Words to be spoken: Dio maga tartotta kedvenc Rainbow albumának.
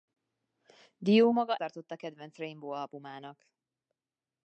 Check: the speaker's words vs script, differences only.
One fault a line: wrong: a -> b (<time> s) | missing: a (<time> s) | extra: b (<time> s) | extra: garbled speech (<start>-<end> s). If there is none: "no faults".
no faults